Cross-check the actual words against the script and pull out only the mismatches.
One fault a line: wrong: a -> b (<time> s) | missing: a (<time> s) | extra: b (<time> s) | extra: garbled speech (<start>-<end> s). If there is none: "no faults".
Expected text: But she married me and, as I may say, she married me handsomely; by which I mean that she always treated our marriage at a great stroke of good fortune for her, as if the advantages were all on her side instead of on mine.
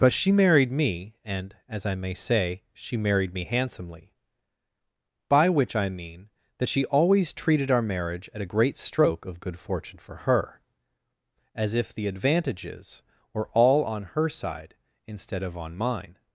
no faults